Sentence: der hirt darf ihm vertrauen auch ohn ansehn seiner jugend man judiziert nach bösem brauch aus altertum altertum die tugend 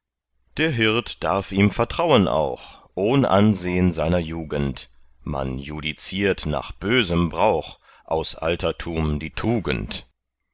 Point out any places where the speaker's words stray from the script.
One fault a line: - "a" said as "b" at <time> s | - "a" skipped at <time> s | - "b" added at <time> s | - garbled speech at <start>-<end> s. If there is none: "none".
- "altertum" skipped at 9.2 s